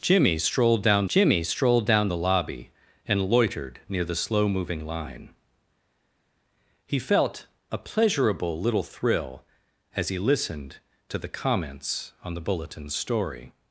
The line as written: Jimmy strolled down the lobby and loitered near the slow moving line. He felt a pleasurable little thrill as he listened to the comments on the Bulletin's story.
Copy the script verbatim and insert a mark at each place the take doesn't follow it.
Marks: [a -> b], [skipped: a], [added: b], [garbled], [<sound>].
Jimmy strolled down [added: jimmy strolled down] the lobby and loitered near the slow moving line. He felt a pleasurable little thrill as he listened to the comments on the Bulletin's story.